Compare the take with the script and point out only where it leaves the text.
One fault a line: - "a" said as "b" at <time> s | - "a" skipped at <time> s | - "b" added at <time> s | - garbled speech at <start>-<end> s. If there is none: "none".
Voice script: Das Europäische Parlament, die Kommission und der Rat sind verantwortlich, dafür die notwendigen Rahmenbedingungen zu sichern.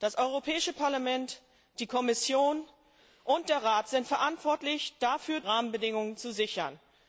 - "die notwendigen" skipped at 5.4 s